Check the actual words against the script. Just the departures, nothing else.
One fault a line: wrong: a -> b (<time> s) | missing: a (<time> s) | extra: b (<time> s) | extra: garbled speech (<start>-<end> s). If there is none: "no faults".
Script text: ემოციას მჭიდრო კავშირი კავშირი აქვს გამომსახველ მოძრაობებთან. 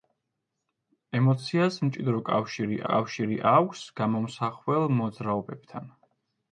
no faults